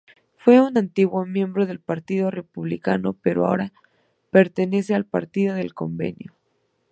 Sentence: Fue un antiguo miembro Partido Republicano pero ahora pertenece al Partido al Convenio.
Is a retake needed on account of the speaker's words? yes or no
yes